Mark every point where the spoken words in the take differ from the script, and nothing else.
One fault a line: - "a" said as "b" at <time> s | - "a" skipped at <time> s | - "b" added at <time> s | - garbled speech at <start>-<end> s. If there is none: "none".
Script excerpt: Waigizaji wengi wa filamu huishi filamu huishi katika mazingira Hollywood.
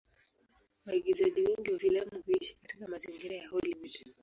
- "filamu huishi" skipped at 2.5 s
- "ya" added at 3.3 s